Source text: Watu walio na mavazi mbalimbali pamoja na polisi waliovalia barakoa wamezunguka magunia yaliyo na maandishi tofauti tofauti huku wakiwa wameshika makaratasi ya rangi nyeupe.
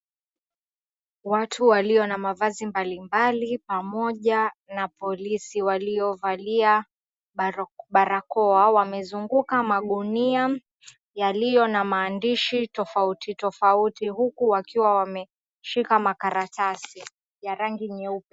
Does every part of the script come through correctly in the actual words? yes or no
yes